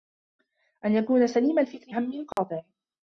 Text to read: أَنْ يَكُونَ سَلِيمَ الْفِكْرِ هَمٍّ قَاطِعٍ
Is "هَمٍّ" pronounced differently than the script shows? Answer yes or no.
no